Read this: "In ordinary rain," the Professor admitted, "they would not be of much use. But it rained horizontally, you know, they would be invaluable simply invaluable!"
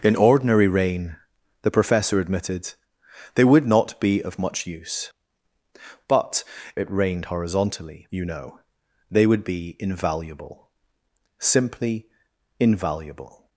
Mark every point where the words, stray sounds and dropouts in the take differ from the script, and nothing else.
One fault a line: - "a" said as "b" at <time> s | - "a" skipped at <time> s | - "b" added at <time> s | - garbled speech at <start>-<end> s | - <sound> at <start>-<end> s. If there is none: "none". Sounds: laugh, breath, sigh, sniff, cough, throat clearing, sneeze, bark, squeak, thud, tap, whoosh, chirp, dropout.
none